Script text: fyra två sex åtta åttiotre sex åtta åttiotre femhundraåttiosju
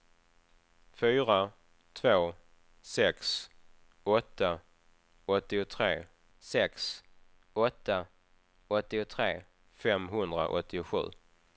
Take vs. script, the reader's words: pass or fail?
pass